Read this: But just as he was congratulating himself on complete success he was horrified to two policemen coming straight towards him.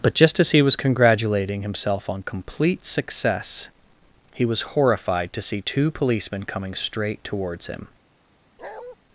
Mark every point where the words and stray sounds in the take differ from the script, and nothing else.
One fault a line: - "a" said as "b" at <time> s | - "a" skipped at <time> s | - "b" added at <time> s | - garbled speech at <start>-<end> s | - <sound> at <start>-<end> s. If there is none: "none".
- "see" added at 5.4 s
- bark at 8.6-9.0 s